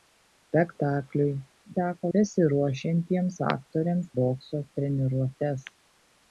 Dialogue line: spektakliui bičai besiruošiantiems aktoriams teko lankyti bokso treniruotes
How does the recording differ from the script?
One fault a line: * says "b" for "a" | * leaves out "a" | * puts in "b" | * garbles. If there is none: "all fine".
* says "teko" for "bičai"
* leaves out "teko lankyti"